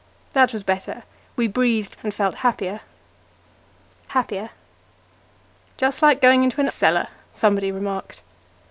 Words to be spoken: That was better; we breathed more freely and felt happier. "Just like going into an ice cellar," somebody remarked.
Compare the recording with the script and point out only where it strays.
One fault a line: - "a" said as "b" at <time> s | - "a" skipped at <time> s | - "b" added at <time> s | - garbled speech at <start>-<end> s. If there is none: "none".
- "more freely" skipped at 2.0 s
- "happier" added at 4.1 s
- "ice" skipped at 6.7 s